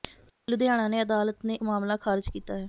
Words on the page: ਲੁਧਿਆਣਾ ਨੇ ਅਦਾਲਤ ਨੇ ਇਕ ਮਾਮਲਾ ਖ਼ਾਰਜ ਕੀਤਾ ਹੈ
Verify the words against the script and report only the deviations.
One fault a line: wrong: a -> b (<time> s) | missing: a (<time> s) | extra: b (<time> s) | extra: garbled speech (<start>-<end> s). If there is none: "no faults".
missing: ਇਕ (1.6 s)